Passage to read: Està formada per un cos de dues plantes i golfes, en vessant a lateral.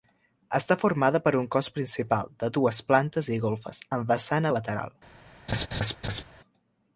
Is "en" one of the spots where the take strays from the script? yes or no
yes